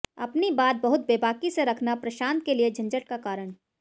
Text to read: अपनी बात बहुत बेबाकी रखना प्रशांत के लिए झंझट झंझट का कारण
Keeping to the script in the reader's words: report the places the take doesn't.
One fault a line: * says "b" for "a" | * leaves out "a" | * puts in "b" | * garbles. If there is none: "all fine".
* puts in "से"
* leaves out "झंझट"